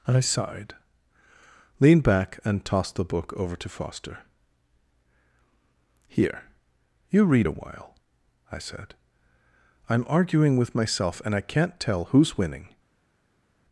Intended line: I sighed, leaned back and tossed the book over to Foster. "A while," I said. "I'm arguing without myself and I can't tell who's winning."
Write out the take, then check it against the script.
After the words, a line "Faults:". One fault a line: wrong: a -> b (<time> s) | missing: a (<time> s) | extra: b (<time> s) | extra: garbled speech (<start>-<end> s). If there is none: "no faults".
I sighed, leaned back and tossed the book over to Foster. "Here, you read a while," I said. "I'm arguing with myself and I can't tell who's winning."
Faults:
extra: Here you read (6.1 s)
wrong: without -> with (10.6 s)